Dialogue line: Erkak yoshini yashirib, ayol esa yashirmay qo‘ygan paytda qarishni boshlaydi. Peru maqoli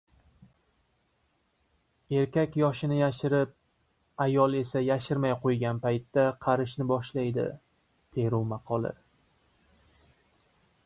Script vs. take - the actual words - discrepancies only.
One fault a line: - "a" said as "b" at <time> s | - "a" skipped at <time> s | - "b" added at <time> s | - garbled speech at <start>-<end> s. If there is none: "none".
none